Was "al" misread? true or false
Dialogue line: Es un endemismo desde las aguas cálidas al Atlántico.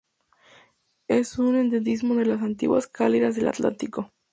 true